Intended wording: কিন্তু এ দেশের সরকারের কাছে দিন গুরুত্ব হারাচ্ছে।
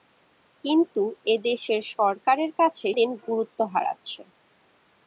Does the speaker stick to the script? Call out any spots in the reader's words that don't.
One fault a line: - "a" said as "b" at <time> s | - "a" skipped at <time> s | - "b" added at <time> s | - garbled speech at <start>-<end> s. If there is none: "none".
none